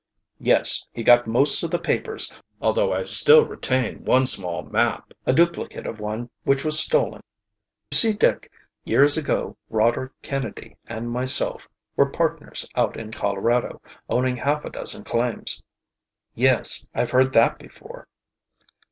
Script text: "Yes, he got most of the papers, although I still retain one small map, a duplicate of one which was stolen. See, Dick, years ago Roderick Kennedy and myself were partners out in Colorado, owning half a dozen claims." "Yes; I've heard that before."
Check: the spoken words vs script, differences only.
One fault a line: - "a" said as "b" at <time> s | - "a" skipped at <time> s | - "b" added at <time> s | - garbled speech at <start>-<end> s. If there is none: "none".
none